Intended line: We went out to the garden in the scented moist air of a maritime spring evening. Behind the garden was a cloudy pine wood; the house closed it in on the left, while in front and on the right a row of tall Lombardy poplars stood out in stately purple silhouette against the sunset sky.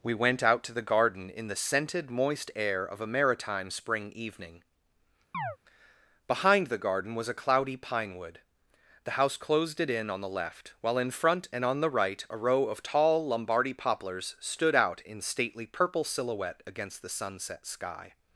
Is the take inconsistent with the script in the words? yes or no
no